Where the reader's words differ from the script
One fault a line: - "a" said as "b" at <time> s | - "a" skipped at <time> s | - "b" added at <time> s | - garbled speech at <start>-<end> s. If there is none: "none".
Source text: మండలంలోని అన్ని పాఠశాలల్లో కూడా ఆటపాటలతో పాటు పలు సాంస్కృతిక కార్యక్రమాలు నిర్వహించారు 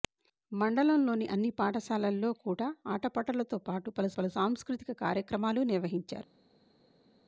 - "పలు" added at 4.1 s